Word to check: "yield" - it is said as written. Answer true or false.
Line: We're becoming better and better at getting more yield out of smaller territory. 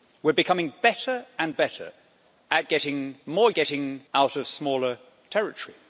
false